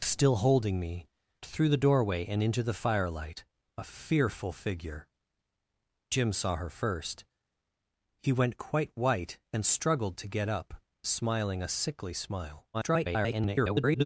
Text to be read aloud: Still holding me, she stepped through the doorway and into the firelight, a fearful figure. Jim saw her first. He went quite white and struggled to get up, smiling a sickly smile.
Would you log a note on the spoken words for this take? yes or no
yes